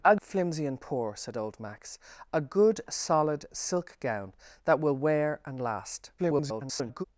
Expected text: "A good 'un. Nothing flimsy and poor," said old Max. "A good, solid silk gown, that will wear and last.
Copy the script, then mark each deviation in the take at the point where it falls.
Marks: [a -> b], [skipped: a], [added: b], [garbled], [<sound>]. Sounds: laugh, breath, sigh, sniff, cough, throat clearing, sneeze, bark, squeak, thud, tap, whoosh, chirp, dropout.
"A [skipped: good 'un. Nothing] flimsy and poor," said old Max. "A good, solid silk gown, that will wear and last. [garbled]